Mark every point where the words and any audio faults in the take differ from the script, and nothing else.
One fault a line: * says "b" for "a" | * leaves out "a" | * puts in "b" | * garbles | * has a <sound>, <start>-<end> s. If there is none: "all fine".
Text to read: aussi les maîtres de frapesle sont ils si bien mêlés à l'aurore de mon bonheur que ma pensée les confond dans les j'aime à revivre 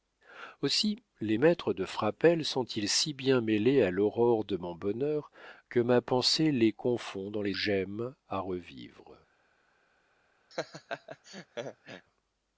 * has a laugh, 10.5-12.1 s